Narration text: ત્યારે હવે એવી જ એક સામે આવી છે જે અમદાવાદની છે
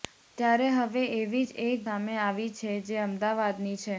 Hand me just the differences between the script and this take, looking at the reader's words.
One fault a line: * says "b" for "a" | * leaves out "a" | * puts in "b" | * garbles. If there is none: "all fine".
all fine